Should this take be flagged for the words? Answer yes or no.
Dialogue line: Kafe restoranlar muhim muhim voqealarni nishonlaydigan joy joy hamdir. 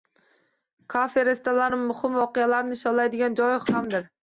yes